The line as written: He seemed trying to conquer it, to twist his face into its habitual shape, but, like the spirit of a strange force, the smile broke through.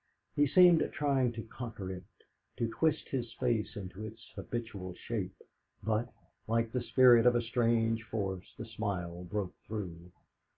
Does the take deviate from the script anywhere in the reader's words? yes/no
no